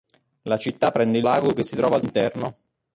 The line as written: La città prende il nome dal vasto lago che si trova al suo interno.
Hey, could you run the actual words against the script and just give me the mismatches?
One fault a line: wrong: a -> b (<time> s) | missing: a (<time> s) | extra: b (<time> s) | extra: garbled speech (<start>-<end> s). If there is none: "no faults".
missing: nome dal vasto (1.3 s)
missing: suo (2.0 s)